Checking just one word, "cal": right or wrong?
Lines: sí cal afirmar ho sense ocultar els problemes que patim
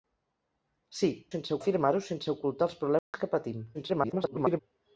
wrong